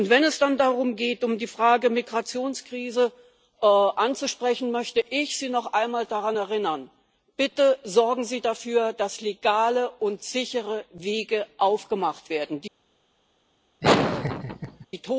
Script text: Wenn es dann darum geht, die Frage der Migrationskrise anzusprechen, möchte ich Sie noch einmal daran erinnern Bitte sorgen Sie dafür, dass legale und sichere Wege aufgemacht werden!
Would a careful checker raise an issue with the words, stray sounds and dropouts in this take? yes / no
yes